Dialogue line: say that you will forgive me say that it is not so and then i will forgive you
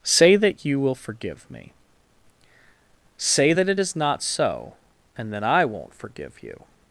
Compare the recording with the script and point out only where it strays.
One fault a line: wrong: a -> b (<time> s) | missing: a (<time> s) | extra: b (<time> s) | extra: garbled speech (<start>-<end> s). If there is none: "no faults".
wrong: will -> won't (5.6 s)